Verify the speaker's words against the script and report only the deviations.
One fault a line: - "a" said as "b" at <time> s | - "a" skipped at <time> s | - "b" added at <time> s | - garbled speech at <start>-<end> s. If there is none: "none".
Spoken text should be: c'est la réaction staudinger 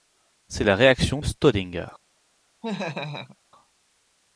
none